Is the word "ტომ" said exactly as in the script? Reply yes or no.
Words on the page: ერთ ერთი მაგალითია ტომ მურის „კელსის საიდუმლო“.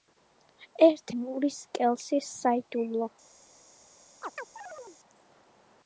no